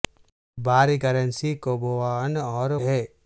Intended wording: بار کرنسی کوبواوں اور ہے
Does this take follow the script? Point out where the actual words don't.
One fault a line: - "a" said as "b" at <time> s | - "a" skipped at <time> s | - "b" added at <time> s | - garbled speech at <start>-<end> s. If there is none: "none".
none